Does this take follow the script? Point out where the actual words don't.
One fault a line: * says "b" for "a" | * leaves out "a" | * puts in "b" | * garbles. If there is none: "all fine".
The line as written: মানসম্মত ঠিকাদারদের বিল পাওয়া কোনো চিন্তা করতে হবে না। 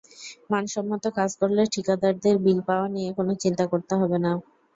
* puts in "কাজ করলে"
* puts in "নিয়ে"